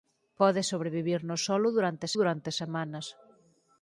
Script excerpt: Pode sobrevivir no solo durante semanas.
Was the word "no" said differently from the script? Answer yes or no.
no